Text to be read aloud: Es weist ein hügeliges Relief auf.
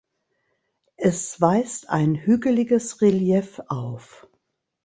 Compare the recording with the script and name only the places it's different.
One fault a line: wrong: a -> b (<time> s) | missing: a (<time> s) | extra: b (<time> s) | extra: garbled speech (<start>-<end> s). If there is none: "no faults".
no faults